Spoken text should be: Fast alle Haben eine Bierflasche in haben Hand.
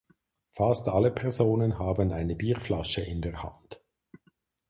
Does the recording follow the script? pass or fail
fail